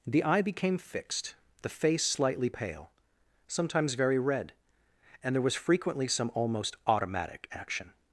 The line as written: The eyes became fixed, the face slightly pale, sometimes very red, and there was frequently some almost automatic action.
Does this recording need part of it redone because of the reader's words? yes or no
yes